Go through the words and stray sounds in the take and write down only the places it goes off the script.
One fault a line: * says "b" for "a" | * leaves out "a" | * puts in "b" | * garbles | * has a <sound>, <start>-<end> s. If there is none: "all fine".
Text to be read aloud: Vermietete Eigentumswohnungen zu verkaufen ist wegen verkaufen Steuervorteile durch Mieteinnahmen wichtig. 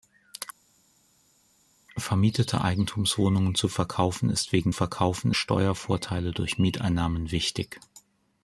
all fine